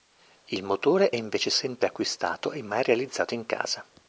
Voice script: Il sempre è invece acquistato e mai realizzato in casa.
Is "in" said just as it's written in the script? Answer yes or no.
yes